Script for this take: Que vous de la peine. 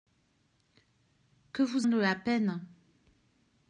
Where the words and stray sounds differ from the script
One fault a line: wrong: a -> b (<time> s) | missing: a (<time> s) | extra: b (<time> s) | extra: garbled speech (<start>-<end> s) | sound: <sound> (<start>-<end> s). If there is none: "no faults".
no faults